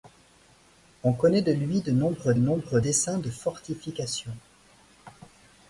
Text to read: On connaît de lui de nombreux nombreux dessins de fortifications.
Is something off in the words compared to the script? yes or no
no